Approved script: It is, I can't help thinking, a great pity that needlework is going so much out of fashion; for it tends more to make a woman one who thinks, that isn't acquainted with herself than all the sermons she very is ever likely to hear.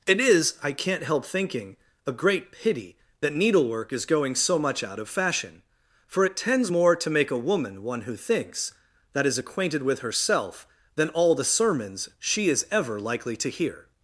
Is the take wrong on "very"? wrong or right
wrong